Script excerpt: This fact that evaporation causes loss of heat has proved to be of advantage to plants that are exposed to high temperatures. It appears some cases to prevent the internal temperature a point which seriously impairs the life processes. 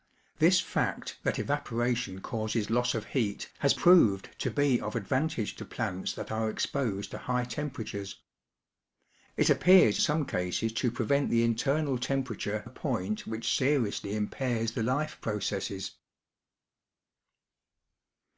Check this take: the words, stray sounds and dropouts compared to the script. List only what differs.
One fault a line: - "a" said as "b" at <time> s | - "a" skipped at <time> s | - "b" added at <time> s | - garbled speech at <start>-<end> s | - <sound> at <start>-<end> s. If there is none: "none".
none